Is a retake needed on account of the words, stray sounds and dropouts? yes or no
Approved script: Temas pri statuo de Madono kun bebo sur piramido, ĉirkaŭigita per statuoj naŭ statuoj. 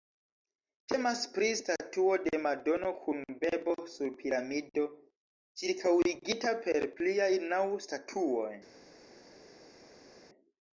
yes